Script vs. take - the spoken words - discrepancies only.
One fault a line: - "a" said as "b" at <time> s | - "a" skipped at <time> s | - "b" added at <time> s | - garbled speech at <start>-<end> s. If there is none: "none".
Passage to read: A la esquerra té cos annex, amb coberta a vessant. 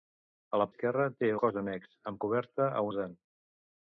none